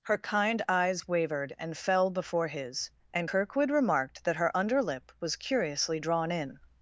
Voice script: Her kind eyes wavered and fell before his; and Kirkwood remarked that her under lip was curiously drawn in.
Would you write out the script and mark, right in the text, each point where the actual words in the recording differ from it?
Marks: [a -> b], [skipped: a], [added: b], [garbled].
Her kind eyes wavered and fell before his; and Kirkwood remarked that her under lip was curiously drawn in.